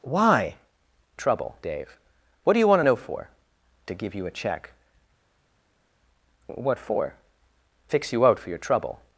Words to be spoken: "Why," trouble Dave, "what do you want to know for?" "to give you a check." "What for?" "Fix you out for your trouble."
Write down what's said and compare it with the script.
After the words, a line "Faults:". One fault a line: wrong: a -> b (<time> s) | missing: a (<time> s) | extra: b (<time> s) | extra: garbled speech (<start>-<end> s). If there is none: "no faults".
"Why," trouble Dave, "what do you want to know for?" "to give you a check." "What for?" "Fix you out for your trouble."
Faults:
no faults